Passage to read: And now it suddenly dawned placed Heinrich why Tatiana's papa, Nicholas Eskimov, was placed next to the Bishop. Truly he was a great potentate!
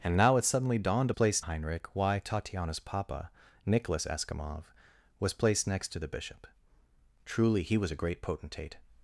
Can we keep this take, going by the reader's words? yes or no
yes